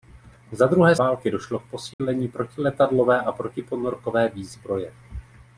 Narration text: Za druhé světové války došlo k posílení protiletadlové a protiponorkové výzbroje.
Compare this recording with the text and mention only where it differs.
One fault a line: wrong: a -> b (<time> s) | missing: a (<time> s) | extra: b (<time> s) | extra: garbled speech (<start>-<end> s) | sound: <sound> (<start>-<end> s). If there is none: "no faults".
missing: světové (0.9 s)
sound: dropout (1.9-2.0 s)